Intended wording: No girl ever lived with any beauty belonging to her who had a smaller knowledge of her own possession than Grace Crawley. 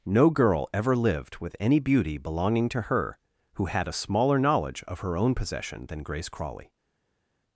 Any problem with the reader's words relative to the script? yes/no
no